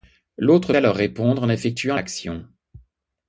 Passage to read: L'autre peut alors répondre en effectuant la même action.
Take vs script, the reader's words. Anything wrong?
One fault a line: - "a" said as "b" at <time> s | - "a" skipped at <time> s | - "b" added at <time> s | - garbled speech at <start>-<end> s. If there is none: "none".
- "peut" skipped at 0.7 s
- "la même" skipped at 2.0 s